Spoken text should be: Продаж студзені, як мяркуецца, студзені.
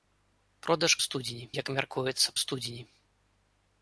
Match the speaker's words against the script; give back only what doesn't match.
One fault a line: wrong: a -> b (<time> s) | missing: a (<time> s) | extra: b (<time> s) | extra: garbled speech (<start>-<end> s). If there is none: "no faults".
no faults